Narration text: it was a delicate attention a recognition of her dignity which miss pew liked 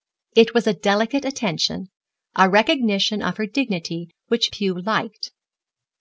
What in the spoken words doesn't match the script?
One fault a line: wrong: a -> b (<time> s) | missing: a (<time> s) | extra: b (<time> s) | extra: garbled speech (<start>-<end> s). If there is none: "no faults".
missing: miss (4.5 s)